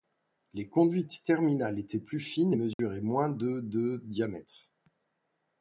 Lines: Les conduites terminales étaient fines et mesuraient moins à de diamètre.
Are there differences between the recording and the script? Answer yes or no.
yes